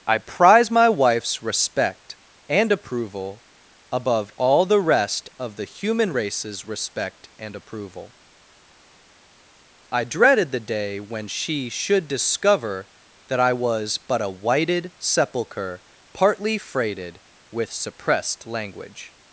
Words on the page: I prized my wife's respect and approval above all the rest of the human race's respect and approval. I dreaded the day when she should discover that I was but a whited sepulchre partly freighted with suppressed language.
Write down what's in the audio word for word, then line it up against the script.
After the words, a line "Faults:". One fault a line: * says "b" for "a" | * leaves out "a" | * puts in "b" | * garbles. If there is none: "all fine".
I prize my wife's respect and approval above all the rest of the human race's respect and approval. I dreaded the day when she should discover that I was but a whited sepulchre partly freighted with suppressed language.
Faults:
* says "prize" for "prized"